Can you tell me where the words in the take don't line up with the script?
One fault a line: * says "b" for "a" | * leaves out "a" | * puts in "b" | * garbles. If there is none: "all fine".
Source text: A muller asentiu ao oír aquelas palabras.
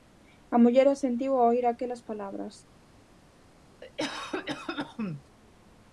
all fine